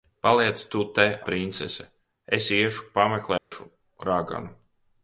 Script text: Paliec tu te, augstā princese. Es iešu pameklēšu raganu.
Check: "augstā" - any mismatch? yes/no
yes